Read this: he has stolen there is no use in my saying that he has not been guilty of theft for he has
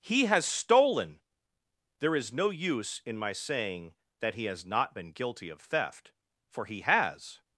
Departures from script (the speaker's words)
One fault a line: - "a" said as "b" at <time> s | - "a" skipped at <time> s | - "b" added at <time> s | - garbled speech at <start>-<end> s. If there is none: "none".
none